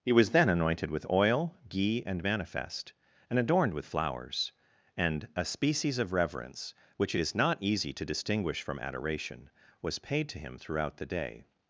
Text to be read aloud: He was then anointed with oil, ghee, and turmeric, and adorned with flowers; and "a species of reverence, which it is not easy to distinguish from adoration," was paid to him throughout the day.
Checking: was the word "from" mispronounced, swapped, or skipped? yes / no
no